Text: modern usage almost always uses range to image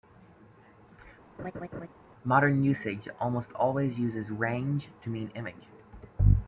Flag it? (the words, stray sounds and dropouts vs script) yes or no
yes